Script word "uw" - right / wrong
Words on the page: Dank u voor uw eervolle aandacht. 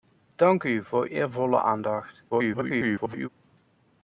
wrong